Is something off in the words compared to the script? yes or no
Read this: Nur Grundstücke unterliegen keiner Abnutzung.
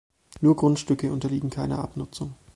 no